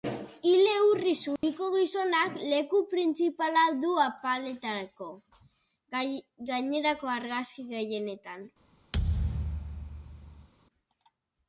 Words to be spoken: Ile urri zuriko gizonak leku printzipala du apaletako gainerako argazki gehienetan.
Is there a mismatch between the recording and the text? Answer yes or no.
no